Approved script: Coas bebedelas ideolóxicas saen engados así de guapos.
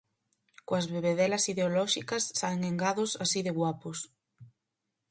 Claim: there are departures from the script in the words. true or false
false